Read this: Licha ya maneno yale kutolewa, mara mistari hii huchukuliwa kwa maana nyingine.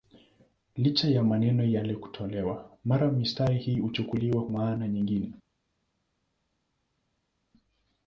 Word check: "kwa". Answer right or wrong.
wrong